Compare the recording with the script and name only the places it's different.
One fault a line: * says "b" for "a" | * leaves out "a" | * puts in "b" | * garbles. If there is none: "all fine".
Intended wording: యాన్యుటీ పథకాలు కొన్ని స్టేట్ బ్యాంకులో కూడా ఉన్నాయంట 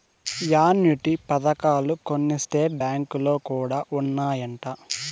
all fine